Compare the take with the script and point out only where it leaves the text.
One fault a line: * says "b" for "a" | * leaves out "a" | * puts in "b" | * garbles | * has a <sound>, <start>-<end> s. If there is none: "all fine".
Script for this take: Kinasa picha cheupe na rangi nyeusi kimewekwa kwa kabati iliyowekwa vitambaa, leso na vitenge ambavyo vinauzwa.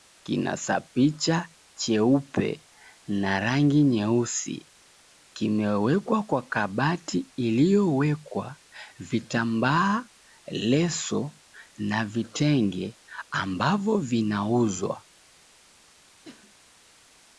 * has a cough, 16.2-16.6 s